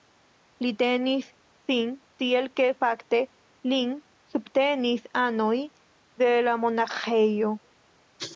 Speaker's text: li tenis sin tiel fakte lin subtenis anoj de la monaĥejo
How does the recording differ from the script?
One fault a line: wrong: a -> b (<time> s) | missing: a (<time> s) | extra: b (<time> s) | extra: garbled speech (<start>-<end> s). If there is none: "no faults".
extra: ke (2.6 s)